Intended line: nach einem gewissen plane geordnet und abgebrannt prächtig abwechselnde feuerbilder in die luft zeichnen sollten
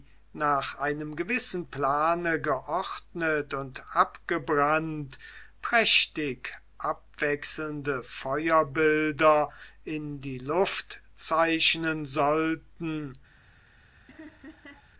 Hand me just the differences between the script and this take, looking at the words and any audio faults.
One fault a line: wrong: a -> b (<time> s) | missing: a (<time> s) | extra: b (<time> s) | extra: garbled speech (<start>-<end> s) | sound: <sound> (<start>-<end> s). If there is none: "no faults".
sound: laugh (14.1-14.9 s)